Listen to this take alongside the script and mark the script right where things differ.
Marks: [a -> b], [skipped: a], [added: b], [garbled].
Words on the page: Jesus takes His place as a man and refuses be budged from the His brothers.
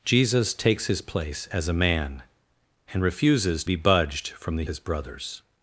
Jesus takes His place as a man and refuses be budged from the His brothers.